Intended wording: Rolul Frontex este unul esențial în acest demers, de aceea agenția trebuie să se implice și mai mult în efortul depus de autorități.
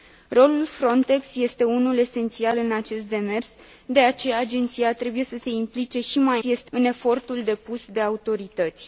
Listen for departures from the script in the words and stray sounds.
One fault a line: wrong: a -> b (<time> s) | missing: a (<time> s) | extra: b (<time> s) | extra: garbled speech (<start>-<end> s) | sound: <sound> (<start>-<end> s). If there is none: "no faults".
wrong: mult -> este (6.4 s)